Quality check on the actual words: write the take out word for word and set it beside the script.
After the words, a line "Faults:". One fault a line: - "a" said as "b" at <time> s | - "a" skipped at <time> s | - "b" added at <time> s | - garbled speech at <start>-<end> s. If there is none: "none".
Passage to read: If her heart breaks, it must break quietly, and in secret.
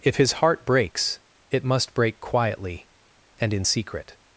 If his heart breaks, it must break quietly, and in secret.
Faults:
- "her" said as "his" at 0.1 s